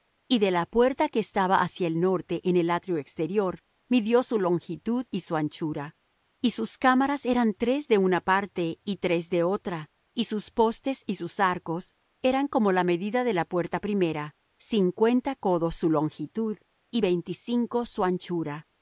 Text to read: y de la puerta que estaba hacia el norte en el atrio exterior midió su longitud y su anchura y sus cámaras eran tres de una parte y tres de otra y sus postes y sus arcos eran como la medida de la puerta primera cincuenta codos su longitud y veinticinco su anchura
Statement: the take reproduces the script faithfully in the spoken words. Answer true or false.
true